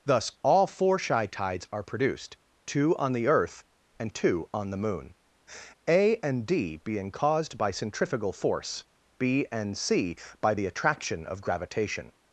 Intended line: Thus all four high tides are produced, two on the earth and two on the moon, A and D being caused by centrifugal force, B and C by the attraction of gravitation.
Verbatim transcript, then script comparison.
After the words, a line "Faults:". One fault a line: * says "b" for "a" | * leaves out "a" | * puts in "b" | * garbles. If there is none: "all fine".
Thus all four shy tides are produced, two on the earth and two on the moon, A and D being caused by centrifugal force, B and C by the attraction of gravitation.
Faults:
* says "shy" for "high"